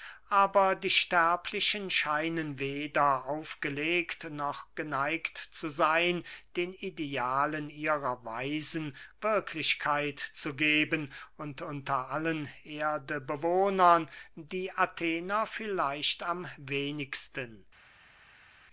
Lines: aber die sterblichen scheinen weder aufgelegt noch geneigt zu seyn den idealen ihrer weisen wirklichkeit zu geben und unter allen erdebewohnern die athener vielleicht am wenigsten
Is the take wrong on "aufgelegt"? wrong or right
right